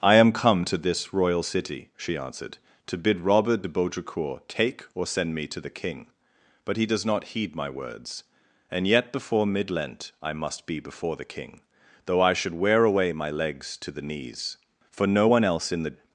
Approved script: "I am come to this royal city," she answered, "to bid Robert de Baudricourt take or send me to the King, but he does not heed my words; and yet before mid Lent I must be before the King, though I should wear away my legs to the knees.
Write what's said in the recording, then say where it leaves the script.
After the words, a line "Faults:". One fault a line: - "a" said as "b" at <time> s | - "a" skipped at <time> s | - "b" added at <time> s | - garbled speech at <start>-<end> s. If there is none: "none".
"I am come to this royal city," she answered, "to bid Robert de Baudricourt take or send me to the King, but he does not heed my words; and yet before mid Lent I must be before the King, though I should wear away my legs to the knees. For no one else in the
Faults:
- "For no one else in the" added at 14.9 s